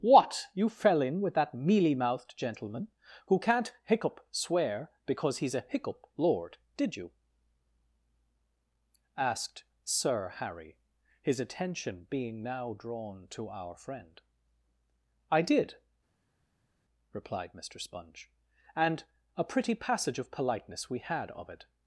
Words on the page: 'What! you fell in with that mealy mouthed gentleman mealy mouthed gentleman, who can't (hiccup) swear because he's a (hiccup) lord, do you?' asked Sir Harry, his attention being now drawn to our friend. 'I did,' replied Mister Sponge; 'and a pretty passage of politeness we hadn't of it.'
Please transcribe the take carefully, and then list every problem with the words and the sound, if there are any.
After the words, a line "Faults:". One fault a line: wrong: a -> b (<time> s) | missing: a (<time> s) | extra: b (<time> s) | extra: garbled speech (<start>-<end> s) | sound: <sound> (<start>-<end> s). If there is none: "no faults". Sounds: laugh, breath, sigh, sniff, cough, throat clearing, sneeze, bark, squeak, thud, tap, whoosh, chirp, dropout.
'What! you fell in with that mealy mouthed gentleman, who can't (hiccup) swear because he's a (hiccup) lord, did you?' asked Sir Harry, his attention being now drawn to our friend. 'I did,' replied Mister Sponge; 'and a pretty passage of politeness we had of it.'
Faults:
missing: mealy mouthed gentleman (2.9 s)
wrong: do -> did (6.8 s)
wrong: hadn't -> had (21.0 s)